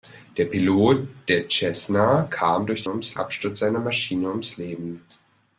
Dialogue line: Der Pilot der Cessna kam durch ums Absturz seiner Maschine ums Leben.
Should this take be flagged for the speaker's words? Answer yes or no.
no